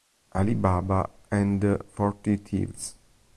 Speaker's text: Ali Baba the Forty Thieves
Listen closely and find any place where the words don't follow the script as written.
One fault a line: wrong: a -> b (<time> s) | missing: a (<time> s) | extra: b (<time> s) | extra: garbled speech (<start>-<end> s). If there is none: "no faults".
extra: and (1.3 s)